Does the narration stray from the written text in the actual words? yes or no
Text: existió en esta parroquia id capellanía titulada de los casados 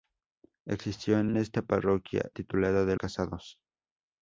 yes